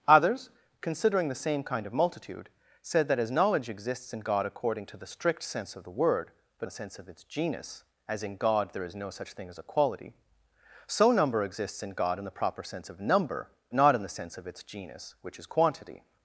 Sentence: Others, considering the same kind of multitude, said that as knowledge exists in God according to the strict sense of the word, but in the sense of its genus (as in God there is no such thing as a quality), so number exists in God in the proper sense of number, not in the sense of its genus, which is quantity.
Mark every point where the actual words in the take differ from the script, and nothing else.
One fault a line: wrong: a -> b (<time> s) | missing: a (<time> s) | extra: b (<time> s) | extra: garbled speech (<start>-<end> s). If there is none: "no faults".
no faults